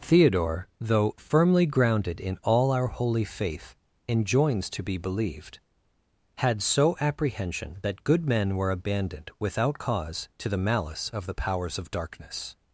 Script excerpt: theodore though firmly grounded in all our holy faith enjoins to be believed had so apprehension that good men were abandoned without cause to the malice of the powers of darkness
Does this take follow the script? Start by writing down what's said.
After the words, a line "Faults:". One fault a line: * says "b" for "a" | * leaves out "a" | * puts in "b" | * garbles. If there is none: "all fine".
theodore though firmly grounded in all our holy faith enjoins to be believed had so apprehension that good men were abandoned without cause to the malice of the powers of darkness
Faults:
all fine